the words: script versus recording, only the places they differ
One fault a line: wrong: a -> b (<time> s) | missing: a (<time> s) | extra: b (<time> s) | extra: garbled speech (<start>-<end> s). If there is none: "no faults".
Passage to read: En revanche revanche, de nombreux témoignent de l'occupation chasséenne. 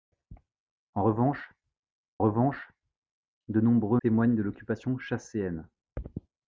no faults